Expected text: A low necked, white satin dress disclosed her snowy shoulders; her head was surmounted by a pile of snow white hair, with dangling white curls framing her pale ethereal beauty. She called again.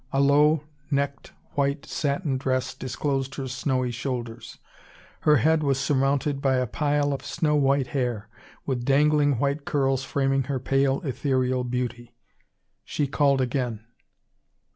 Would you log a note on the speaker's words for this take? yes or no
no